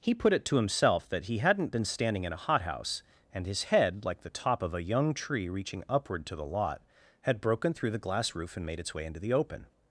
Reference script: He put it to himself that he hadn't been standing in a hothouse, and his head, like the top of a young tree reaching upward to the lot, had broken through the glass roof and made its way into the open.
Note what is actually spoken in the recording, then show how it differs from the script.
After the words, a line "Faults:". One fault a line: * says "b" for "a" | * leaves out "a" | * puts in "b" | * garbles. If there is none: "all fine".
He put it to himself that he hadn't been standing in a hothouse, and his head, like the top of a young tree reaching upward to the lot, had broken through the glass roof and made its way into the open.
Faults:
all fine